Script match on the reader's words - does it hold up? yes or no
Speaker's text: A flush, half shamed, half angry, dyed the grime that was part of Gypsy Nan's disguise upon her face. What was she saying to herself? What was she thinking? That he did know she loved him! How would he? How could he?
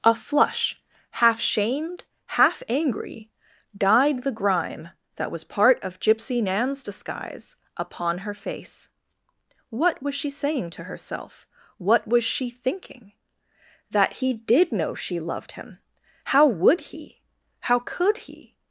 yes